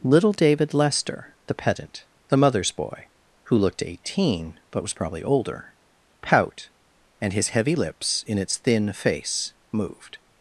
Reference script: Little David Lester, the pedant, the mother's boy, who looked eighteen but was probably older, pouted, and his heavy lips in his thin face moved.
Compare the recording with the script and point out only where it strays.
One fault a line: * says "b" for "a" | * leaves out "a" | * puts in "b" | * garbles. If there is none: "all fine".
* says "pout" for "pouted"
* says "its" for "his"